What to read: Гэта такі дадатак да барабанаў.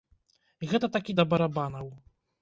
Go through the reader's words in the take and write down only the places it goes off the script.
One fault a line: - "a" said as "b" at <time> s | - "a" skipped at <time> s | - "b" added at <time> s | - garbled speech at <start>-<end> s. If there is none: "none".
- "дадатак" skipped at 1.2 s